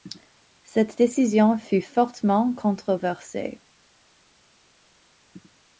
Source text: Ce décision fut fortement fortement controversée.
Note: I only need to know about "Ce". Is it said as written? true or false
false